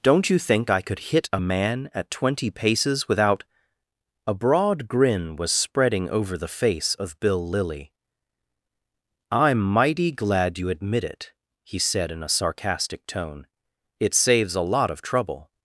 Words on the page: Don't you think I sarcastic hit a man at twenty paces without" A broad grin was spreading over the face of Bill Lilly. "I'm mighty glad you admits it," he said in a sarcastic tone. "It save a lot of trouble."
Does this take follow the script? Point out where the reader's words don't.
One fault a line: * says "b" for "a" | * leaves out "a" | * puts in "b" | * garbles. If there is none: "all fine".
* says "could" for "sarcastic"
* says "admit" for "admits"
* says "saves" for "save"